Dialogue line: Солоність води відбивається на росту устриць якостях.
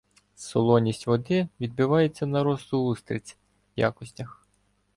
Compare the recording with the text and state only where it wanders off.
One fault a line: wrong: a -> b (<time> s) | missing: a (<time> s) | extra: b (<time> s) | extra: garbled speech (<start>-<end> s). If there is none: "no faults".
no faults